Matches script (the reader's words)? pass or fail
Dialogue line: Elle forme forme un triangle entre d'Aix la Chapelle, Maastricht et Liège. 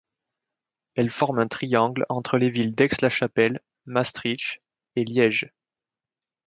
fail